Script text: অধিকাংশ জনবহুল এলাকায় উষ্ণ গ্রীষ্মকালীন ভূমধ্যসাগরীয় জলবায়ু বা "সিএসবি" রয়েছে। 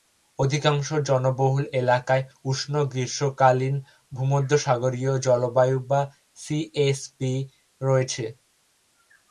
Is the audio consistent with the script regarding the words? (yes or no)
yes